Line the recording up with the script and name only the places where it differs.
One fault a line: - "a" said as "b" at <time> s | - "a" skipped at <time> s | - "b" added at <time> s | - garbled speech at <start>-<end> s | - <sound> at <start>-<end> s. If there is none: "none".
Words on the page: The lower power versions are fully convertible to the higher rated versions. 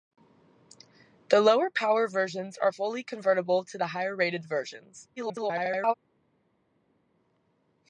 - garbled speech at 5.2-5.9 s